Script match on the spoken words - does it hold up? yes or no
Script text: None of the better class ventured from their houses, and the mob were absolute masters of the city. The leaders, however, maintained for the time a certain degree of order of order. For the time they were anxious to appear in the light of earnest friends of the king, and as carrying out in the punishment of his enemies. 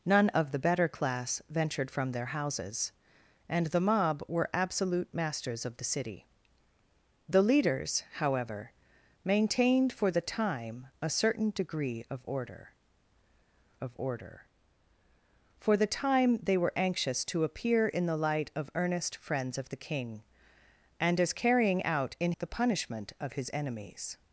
yes